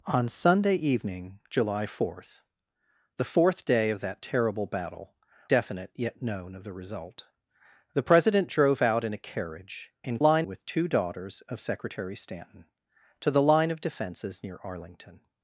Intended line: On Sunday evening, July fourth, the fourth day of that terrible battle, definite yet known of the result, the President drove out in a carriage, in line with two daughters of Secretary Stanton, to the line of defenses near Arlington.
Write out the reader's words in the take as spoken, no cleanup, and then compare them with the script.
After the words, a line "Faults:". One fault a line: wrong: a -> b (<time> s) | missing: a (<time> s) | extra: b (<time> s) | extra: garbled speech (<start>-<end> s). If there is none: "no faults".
On Sunday evening, July fourth, the fourth day of that terrible battle, definite yet known of the result, the President drove out in a carriage, in line with two daughters of Secretary Stanton, to the line of defenses near Arlington.
Faults:
no faults